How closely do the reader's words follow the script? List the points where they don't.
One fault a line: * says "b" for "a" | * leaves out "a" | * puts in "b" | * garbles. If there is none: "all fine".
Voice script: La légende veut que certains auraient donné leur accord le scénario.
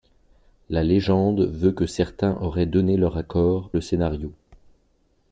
all fine